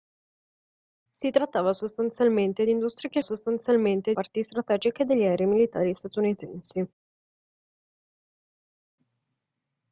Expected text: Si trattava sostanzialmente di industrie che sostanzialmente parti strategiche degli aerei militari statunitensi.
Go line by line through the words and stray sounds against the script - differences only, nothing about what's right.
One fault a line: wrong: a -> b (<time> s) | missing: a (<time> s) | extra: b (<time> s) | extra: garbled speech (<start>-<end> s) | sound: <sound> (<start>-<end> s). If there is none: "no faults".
no faults